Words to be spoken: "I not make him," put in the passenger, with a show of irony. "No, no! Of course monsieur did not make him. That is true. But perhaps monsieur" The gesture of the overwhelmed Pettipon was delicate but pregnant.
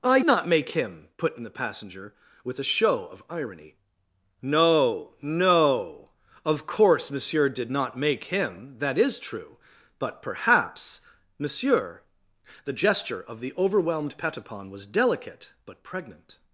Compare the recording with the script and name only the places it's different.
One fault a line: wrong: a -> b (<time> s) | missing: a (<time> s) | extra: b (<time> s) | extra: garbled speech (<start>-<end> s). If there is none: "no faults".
no faults